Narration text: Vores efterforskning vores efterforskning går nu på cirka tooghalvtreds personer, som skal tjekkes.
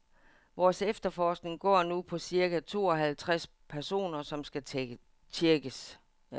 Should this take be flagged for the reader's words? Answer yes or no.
yes